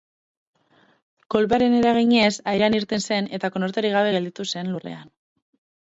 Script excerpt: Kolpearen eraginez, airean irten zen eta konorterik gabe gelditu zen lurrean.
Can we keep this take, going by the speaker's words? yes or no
yes